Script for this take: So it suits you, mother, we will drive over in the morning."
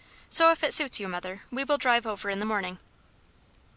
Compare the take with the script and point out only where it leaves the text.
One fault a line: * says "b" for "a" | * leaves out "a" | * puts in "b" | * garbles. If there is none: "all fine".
* puts in "if"